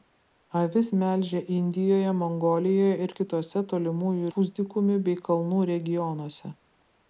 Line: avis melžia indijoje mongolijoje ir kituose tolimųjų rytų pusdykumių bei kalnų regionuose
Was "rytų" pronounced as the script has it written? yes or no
no